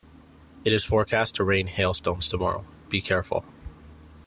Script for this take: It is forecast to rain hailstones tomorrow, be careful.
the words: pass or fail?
pass